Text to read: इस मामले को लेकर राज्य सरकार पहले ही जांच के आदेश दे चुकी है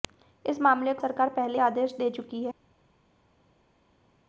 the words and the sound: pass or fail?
fail